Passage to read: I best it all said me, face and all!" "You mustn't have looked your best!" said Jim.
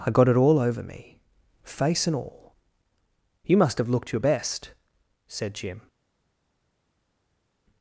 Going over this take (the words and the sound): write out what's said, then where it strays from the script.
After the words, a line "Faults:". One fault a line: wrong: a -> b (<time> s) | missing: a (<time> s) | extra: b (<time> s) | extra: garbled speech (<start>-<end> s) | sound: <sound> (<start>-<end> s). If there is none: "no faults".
I got it all over me, face and all!" "You must have looked your best!" said Jim.
Faults:
wrong: best -> got (0.1 s)
wrong: said -> over (0.6 s)
wrong: mustn't -> must (3.5 s)